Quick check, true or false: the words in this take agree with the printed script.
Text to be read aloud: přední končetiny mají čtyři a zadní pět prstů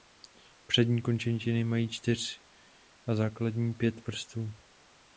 true